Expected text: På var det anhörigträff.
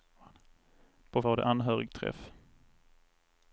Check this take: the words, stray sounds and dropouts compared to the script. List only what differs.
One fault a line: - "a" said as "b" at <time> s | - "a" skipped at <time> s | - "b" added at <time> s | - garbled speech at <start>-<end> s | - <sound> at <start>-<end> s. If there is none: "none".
none